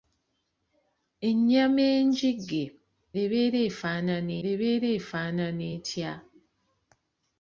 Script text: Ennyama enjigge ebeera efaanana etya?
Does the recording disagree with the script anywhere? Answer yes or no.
yes